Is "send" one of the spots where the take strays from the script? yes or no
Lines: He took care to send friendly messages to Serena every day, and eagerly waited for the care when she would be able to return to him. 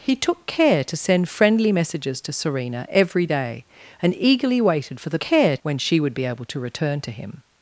no